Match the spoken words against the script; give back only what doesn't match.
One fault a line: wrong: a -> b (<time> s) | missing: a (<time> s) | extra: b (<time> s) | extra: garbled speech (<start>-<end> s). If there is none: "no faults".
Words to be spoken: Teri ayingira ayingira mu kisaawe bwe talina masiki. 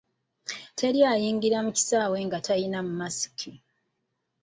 missing: ayingira (1.6 s)
wrong: bwe -> nga (2.3 s)